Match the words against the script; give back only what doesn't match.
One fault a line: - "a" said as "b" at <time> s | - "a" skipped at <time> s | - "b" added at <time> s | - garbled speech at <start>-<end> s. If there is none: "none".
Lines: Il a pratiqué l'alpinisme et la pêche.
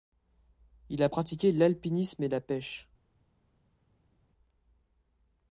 none